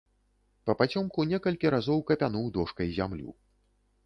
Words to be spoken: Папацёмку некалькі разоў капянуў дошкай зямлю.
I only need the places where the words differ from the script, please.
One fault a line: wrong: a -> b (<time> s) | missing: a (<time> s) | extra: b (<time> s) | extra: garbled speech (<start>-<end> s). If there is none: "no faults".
no faults